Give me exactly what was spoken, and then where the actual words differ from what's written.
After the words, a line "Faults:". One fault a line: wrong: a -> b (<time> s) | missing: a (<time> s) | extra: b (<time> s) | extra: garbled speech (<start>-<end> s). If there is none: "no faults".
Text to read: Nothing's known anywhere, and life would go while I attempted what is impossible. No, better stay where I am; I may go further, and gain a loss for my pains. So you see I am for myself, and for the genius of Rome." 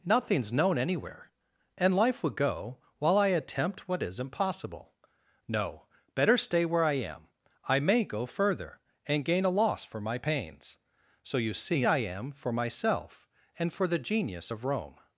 Nothing's known anywhere, and life would go while I attempt what is impossible. No, better stay where I am; I may go further, and gain a loss for my pains. So you see I am for myself, and for the genius of Rome."
Faults:
wrong: attempted -> attempt (3.3 s)